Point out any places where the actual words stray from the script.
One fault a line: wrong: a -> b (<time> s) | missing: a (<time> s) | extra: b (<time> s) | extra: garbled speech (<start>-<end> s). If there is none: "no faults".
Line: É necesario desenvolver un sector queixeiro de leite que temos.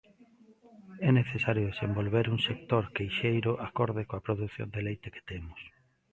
extra: acorde coa produción (3.7 s)